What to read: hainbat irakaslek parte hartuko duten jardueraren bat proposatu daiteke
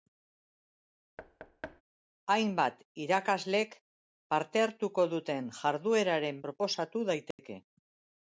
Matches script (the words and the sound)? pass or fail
fail